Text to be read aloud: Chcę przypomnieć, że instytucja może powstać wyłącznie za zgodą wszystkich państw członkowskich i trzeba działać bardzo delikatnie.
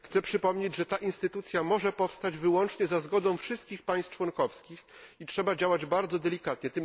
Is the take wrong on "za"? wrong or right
right